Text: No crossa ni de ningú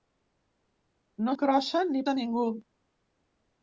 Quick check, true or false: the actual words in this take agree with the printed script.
true